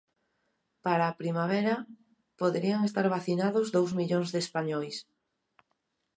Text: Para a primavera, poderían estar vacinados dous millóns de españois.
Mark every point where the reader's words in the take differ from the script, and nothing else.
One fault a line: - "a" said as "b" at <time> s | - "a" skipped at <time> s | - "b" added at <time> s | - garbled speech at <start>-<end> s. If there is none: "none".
none